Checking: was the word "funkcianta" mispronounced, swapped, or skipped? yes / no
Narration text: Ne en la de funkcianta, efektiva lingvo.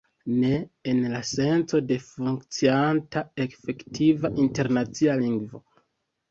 no